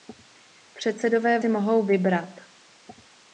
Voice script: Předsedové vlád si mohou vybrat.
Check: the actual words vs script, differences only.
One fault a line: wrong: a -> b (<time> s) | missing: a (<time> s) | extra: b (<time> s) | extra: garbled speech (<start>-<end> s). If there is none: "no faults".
missing: vlád (1.4 s)